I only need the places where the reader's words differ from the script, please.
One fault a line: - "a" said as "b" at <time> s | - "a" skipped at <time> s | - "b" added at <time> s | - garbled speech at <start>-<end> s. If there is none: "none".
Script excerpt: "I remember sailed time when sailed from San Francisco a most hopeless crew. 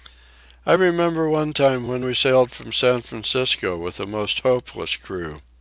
- "sailed" said as "one" at 1.3 s
- "we" added at 2.0 s
- "with" added at 3.8 s